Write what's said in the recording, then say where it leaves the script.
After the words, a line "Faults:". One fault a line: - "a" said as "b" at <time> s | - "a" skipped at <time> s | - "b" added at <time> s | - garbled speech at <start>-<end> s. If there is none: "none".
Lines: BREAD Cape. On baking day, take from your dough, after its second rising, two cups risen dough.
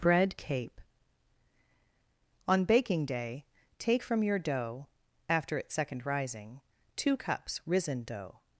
BREAD Cape. On baking day, take from your dough, after its second rising, two cups risen dough.
Faults:
none